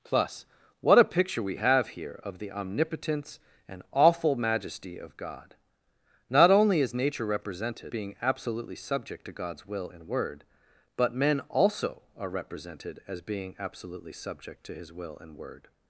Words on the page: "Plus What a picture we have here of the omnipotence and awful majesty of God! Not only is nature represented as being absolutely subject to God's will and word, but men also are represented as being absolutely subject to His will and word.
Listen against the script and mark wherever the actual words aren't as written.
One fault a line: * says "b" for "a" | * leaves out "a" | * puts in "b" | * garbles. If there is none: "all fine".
* leaves out "as"